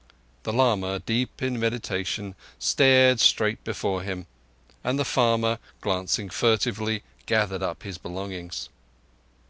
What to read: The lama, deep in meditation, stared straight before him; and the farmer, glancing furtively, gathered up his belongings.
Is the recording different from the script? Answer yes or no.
no